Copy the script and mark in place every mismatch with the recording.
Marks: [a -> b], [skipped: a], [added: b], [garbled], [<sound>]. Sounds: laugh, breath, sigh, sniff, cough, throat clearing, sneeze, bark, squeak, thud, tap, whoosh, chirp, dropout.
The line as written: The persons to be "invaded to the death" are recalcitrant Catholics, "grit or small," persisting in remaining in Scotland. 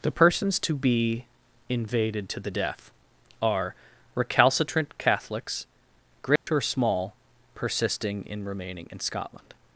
The persons to be "invaded to the death" are recalcitrant Catholics, "grit [dropout] or small," persisting in remaining in Scotland.